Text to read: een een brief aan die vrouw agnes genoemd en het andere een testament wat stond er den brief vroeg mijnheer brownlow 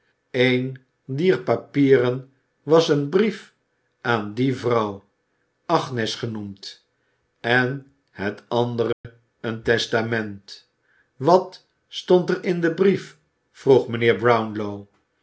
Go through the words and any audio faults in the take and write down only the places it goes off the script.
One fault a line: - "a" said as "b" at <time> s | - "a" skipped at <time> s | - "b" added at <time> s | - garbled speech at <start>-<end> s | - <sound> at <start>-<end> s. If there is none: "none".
- "dier papieren was" added at 1.1 s
- dropout at 8.9-9.0 s
- "in" added at 12.4 s